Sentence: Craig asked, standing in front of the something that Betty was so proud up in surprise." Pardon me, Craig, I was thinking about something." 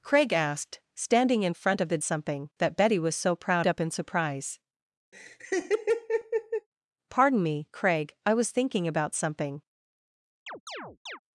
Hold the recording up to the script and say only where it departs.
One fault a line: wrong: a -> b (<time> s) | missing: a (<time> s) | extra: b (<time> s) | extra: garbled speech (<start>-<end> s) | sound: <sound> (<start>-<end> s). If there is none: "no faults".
sound: laugh (5.1-6.7 s)
sound: chirp (10.5-11.2 s)